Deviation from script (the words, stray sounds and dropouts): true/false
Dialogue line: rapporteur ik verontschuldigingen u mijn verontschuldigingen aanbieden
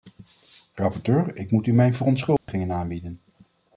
true